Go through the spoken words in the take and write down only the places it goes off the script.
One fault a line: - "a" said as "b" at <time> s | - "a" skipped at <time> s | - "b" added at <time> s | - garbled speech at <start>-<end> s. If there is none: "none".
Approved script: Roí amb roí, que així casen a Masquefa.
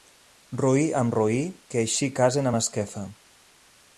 none